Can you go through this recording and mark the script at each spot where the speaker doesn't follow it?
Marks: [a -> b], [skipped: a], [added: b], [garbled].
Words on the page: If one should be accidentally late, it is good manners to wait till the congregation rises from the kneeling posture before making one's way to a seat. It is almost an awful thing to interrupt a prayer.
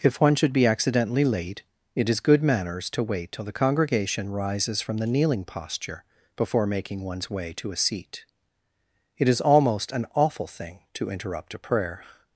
If one should be accidentally late, it is good manners to wait till the congregation rises from the kneeling posture before making one's way to a seat. It is almost an awful thing to interrupt a prayer.